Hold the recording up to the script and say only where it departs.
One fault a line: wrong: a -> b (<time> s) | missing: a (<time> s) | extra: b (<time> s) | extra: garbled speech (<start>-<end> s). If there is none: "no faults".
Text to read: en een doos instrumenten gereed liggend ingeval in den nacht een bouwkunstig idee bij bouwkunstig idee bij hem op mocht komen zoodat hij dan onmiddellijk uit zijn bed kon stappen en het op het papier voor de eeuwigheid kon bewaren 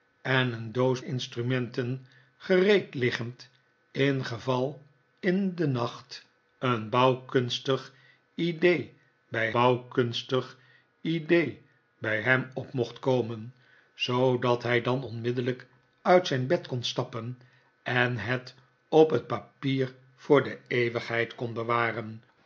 no faults